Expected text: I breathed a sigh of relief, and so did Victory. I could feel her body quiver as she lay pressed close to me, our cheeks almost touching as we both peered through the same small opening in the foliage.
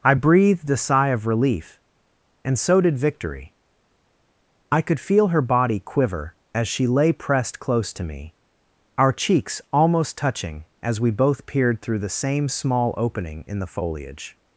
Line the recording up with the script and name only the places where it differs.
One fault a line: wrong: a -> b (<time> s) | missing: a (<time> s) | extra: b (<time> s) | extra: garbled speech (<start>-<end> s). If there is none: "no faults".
no faults